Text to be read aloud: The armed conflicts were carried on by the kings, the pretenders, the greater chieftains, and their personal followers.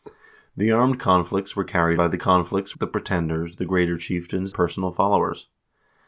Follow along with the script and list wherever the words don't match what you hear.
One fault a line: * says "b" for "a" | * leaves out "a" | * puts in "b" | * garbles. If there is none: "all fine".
* leaves out "on"
* says "conflicts" for "kings"
* leaves out "and their"